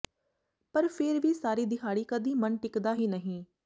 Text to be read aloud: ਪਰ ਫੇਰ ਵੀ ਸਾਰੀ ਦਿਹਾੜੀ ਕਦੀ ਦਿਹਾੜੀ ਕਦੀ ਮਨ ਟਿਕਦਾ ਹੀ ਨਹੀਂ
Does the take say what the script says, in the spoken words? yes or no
no